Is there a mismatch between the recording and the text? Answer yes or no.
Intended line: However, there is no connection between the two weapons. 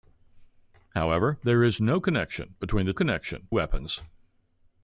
yes